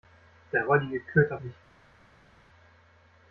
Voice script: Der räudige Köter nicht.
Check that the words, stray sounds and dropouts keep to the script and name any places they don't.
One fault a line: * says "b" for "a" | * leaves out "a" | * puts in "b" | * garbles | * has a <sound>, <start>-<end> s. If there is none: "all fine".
all fine